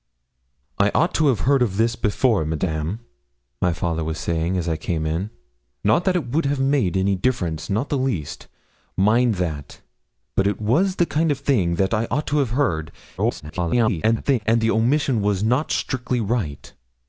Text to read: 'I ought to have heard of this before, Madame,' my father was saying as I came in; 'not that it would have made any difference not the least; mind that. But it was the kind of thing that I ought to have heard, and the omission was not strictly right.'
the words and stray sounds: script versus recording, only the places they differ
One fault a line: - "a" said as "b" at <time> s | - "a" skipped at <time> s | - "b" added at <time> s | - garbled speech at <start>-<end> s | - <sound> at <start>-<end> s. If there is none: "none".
- garbled speech at 13.2-14.4 s